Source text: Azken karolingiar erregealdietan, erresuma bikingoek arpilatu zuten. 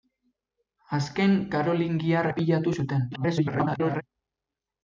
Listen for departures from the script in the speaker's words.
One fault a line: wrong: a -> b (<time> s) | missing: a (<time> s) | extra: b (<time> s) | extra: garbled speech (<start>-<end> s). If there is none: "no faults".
missing: erregealdietan erresuma bikingoek (2.3 s)
extra: garbled speech (3.1-4.0 s)